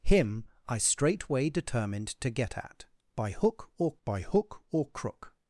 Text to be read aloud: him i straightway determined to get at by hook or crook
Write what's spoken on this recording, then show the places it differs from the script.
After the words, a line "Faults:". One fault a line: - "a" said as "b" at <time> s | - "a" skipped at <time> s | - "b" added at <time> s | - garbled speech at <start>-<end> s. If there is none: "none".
him i straightway determined to get at by hook or by hook or crook
Faults:
- "by hook or" added at 4.0 s